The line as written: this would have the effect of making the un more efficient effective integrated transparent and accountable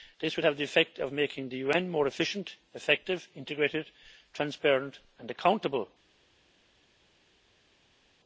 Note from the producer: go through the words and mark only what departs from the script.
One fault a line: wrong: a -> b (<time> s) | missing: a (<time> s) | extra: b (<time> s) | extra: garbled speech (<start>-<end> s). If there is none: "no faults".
no faults